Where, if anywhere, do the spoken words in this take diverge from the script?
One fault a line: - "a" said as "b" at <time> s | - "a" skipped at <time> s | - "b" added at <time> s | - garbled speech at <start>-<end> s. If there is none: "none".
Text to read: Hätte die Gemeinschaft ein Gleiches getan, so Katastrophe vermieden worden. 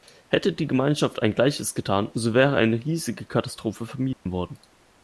- "wäre eine riesige" added at 2.3 s